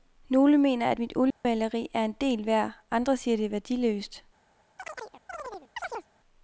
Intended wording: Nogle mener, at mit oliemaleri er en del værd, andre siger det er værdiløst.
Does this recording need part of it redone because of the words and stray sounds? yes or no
yes